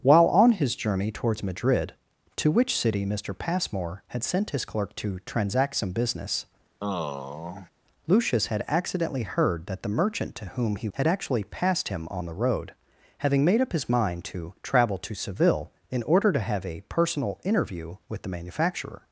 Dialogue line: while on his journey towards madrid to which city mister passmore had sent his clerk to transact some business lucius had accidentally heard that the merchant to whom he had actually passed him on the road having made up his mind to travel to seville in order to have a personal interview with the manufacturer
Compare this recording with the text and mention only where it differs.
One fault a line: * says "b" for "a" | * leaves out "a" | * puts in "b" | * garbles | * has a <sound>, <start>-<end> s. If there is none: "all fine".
* has a sigh, 6.8-7.7 s